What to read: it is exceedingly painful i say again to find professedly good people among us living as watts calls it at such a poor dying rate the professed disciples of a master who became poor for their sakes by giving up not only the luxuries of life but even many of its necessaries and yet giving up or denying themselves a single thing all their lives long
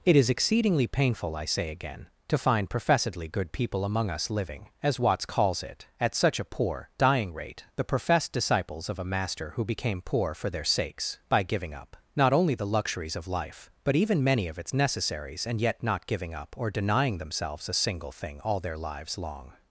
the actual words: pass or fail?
fail